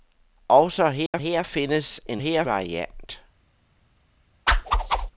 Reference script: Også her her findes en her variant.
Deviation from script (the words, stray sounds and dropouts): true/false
true